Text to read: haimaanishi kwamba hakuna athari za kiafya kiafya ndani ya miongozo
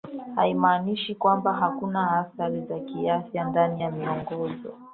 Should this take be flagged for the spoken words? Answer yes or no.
yes